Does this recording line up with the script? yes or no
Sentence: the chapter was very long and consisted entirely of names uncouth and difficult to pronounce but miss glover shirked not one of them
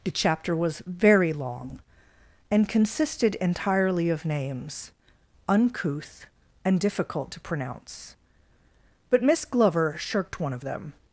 no